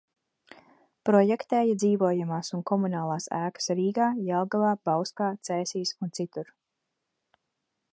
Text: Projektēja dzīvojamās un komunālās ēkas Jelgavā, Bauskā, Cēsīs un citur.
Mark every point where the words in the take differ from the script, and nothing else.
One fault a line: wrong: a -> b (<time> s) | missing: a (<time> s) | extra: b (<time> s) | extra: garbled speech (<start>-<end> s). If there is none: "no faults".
extra: Rīgā (3.8 s)